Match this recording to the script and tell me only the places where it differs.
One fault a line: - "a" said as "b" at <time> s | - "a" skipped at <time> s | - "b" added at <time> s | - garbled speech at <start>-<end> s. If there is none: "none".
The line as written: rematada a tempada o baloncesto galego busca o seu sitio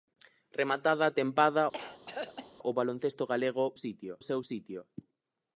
- "busca" said as "sitio" at 3.8 s